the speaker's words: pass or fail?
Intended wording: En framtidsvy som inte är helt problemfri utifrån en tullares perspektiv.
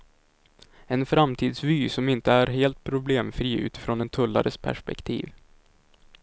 pass